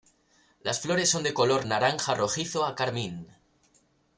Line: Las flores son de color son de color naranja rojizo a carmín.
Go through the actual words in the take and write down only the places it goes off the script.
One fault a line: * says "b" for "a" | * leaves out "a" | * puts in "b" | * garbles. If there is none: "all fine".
* leaves out "son de color"